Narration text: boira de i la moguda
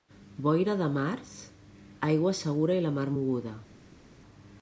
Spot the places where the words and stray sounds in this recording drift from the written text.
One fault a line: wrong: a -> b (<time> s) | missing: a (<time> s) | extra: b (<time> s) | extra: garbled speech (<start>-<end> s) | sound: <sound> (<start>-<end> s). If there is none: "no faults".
extra: març aigua segura (0.9 s)
extra: mar (3.0 s)